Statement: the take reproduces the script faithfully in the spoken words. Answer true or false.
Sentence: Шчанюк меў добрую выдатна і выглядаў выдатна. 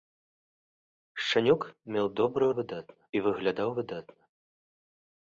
true